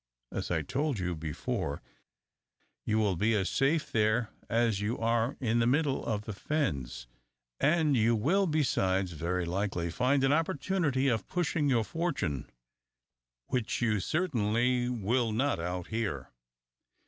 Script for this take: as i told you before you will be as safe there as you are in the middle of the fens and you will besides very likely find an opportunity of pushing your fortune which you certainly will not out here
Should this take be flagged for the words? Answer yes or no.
no